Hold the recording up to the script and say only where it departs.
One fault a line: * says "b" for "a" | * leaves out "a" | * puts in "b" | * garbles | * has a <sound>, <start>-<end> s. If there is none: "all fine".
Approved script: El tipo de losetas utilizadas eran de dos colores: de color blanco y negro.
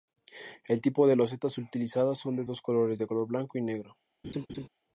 * says "son" for "eran"
* has a laugh, 4.2-4.7 s